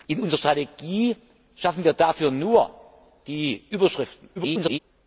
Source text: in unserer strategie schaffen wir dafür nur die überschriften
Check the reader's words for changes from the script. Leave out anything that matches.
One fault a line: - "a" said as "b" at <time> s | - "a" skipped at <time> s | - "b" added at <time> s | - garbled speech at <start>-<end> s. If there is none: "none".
- garbled speech at 4.4-4.8 s